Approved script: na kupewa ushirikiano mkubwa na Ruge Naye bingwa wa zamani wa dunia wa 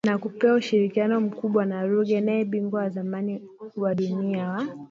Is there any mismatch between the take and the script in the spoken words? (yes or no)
no